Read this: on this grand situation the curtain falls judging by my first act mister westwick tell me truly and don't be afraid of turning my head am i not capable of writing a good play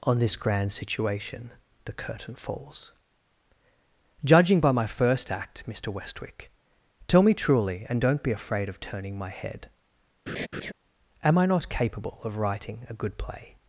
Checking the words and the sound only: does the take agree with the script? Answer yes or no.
no